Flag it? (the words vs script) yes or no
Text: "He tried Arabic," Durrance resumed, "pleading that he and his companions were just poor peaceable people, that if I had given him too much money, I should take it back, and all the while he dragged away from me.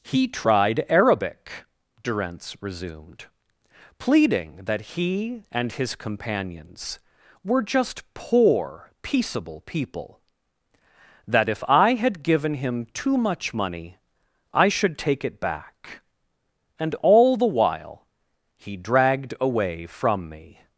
no